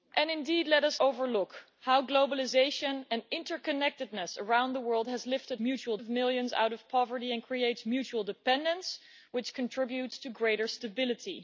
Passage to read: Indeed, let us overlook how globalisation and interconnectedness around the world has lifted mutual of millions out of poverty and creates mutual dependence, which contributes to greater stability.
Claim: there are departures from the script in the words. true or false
false